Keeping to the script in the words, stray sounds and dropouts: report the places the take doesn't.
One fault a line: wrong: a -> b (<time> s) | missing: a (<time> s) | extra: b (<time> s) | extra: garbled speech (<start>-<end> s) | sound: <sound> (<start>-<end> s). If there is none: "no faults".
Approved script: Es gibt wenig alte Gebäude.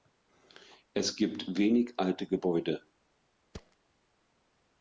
sound: thud (3.5-3.8 s)